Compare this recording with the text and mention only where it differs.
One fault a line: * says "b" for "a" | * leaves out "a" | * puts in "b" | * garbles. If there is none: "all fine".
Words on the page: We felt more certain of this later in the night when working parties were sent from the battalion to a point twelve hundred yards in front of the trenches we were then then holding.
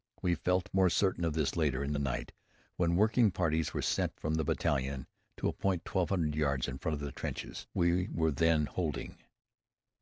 * leaves out "then"